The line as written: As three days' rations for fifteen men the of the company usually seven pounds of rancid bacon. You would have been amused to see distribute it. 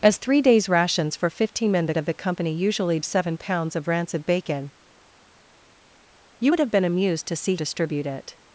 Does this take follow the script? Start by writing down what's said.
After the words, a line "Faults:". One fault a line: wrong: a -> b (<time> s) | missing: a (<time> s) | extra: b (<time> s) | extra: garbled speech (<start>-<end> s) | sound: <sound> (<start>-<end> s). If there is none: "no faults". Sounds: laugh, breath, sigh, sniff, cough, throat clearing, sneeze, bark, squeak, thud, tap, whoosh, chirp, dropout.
As three days' rations for fifteen men the of the company usually seven pounds of rancid bacon. You would have been amused to see distribute it.
Faults:
no faults